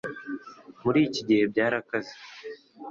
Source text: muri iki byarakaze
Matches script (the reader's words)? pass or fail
fail